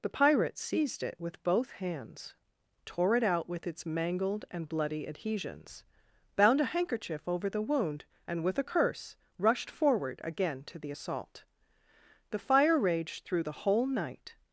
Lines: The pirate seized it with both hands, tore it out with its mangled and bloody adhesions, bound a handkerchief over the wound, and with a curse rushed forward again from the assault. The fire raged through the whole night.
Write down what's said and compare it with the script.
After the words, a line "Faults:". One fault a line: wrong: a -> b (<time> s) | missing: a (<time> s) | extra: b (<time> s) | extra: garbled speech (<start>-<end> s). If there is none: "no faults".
The pirate seized it with both hands, tore it out with its mangled and bloody adhesions, bound a handkerchief over the wound, and with a curse rushed forward again to the assault. The fire raged through the whole night.
Faults:
wrong: from -> to (10.6 s)